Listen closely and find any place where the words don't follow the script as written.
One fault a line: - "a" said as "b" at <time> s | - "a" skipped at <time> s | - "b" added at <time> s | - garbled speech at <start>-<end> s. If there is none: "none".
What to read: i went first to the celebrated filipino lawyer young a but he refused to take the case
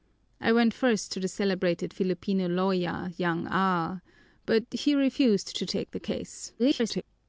- garbled speech at 6.6-7.0 s